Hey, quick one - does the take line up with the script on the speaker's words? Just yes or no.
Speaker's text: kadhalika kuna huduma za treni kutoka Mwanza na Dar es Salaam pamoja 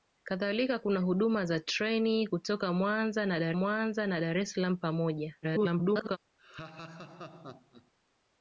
no